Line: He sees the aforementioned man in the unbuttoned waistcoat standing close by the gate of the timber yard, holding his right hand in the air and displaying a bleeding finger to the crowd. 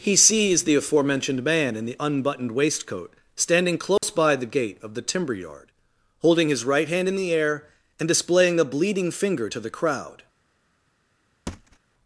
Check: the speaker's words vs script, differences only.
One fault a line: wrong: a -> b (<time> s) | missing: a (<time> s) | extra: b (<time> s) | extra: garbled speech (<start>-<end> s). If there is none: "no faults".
no faults